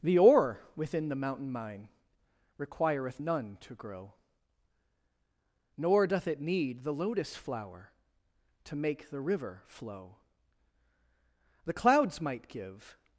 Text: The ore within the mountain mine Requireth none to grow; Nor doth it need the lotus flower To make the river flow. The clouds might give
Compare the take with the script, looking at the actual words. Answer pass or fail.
pass